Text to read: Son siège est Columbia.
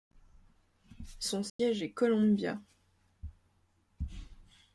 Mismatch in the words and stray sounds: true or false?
true